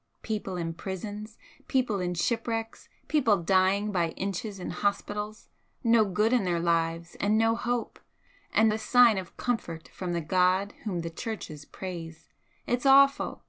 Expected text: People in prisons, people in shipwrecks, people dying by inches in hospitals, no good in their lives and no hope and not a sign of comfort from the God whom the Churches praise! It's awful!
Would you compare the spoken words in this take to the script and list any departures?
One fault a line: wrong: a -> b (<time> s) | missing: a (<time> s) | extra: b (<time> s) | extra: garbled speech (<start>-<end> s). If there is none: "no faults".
missing: not (8.7 s)